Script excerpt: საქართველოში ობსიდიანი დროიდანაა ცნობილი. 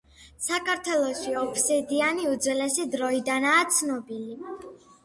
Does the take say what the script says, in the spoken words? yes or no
no